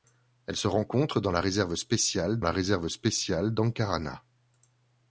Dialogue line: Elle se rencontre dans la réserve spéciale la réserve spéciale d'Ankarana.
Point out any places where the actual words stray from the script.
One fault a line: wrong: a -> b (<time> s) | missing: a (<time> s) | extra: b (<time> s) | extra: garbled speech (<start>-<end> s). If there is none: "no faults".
no faults